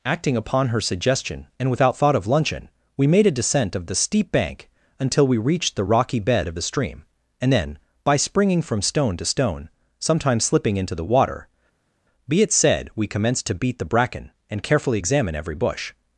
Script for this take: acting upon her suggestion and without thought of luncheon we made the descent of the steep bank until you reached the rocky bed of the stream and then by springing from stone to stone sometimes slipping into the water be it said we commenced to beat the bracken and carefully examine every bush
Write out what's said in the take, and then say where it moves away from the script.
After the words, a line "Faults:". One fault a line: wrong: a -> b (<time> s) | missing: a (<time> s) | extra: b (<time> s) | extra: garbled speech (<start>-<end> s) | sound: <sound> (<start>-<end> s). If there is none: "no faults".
acting upon her suggestion and without thought of luncheon we made a descent of the steep bank until we reached the rocky bed of the stream and then by springing from stone to stone sometimes slipping into the water be it said we commenced to beat the bracken and carefully examine every bush
Faults:
wrong: the -> a (3.3 s)
wrong: you -> we (5.3 s)